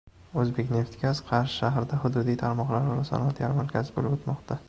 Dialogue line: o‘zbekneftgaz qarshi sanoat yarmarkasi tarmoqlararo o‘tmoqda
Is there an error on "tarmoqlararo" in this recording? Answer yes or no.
yes